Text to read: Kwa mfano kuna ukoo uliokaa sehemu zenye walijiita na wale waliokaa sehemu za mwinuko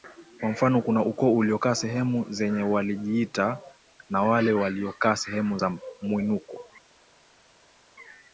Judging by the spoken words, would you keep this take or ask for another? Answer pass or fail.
pass